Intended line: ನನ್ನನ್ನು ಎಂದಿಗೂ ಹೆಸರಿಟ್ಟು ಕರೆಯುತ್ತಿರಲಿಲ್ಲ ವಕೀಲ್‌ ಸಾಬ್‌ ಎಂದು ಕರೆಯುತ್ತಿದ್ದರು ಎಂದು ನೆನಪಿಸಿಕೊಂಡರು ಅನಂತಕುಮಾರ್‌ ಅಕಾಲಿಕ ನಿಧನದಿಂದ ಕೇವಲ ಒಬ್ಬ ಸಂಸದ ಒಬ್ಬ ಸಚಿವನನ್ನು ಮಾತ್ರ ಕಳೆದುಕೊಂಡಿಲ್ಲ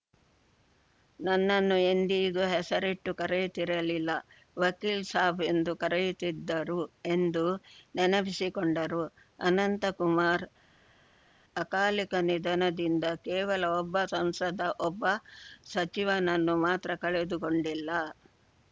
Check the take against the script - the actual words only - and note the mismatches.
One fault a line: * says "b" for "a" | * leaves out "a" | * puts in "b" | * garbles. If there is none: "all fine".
all fine